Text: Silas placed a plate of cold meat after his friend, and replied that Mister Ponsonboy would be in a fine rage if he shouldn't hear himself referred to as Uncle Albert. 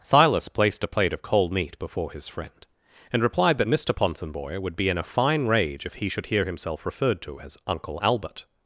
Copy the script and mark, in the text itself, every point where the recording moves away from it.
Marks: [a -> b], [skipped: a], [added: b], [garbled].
Silas placed a plate of cold meat [after -> before] his friend, and replied that Mister Ponsonboy would be in a fine rage if he [shouldn't -> should] hear himself referred to as Uncle Albert.